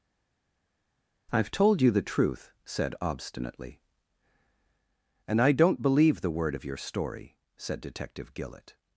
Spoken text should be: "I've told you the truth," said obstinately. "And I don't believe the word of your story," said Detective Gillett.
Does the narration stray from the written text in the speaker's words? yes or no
no